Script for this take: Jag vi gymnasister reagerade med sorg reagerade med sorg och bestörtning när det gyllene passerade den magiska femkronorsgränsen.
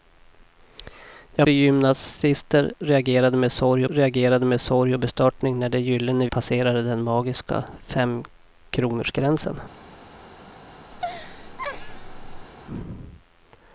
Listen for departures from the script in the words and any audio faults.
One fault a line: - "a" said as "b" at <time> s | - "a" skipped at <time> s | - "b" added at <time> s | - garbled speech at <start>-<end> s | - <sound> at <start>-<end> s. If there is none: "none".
- laugh at 10.9-12.5 s